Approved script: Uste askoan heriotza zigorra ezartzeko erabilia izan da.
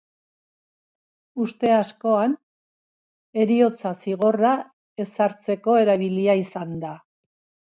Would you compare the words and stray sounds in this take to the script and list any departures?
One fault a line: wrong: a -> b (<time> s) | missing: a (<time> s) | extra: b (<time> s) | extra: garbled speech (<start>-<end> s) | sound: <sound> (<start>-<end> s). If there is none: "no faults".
no faults